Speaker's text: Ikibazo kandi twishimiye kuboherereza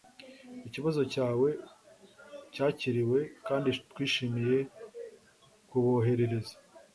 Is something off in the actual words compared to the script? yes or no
yes